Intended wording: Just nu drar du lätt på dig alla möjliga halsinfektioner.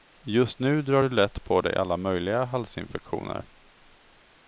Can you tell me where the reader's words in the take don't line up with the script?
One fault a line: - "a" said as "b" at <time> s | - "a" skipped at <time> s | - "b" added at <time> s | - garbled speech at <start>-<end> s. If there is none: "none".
none